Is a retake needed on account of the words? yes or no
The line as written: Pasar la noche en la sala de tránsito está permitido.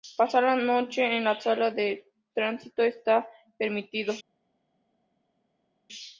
no